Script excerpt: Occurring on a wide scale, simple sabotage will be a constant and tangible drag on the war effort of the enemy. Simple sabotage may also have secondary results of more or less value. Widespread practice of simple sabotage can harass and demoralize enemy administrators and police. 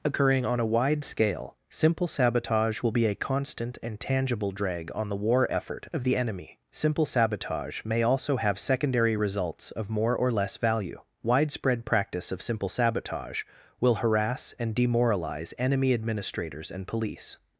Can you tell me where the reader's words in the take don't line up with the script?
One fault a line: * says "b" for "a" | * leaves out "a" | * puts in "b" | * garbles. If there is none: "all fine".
* says "will" for "can"